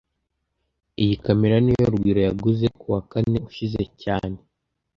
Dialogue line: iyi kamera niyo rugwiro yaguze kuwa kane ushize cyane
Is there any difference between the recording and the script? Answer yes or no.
no